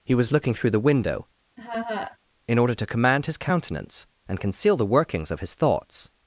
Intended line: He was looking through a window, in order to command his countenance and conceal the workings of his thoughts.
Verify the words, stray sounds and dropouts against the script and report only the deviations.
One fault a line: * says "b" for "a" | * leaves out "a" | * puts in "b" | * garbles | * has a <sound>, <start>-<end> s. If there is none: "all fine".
* says "the" for "a"
* has a laugh, 1.6-2.2 s